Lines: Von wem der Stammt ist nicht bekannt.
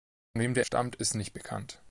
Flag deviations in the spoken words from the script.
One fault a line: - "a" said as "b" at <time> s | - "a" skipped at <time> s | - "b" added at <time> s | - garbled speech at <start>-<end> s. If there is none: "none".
none